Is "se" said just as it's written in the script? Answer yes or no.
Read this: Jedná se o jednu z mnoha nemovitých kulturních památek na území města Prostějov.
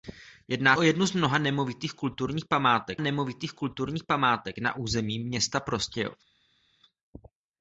no